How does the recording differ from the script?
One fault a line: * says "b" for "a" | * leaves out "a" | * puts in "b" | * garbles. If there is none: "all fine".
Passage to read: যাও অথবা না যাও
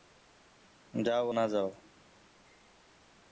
* leaves out "অথবা"